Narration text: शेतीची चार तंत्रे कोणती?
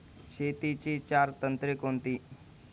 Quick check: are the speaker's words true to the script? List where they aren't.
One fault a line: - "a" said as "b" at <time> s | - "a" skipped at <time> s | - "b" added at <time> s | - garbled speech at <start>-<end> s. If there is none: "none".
none